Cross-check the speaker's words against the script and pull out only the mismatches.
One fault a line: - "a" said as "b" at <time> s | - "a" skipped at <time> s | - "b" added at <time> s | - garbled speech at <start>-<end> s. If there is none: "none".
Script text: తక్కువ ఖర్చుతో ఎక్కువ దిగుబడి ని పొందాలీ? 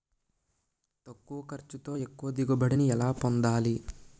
- "ఎలా" added at 2.9 s